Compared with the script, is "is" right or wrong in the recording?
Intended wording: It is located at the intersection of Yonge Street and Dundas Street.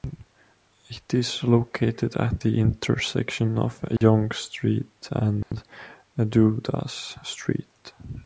right